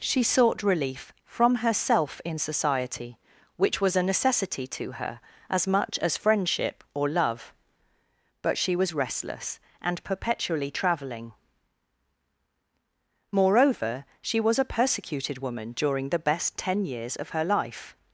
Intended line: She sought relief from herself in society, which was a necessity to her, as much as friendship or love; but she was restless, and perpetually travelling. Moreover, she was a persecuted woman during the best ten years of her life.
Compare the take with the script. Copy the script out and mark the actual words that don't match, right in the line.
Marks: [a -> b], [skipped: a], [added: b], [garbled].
She sought relief from herself in society, which was a necessity to her, as much as friendship or love; but she was restless, and perpetually travelling. Moreover, she was a persecuted woman during the best ten years of her life.